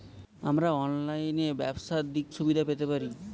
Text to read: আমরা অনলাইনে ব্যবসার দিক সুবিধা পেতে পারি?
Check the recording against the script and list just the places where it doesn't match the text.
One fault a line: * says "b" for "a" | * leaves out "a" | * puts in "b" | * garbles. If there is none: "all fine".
all fine